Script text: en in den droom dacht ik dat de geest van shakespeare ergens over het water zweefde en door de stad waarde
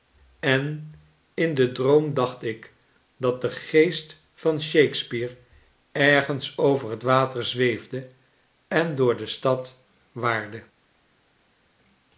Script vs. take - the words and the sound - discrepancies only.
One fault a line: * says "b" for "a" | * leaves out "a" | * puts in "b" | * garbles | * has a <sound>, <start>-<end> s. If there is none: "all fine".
all fine